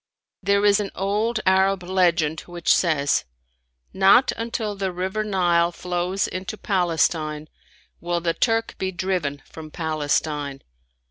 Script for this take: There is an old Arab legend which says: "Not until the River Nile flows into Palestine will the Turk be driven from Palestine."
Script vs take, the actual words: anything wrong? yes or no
no